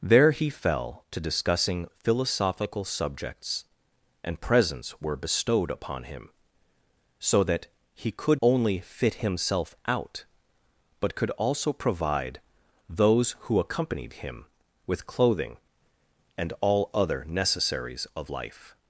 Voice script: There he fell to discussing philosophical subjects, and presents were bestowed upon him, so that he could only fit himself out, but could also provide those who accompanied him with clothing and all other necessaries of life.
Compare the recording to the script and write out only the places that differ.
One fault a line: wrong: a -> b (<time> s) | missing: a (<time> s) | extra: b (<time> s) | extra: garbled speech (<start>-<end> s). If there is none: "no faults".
no faults